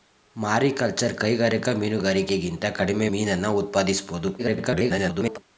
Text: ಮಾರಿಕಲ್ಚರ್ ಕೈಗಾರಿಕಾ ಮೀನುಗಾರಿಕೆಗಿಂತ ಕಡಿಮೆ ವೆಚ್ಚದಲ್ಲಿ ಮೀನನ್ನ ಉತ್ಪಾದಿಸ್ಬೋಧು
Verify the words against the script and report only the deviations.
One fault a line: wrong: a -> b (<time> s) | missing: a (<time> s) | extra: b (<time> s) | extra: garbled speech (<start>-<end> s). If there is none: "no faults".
missing: ವೆಚ್ಚದಲ್ಲಿ (3.1 s)
extra: garbled speech (4.4-5.4 s)